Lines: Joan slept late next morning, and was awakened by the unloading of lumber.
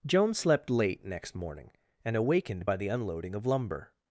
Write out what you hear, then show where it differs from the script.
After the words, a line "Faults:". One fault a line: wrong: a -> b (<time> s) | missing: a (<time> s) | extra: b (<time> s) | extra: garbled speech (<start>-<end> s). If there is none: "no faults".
Joan slept late next morning, and awakened by the unloading of lumber.
Faults:
missing: was (2.2 s)